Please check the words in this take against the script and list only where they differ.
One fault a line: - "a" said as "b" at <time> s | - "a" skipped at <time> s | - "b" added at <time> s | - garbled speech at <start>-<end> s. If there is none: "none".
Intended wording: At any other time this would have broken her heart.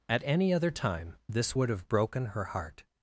none